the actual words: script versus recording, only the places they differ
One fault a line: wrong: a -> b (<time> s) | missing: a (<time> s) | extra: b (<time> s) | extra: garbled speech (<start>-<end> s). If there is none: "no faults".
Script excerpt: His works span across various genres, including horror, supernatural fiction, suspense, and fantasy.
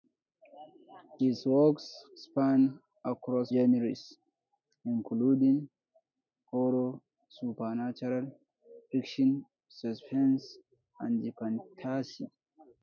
missing: various (3.5 s)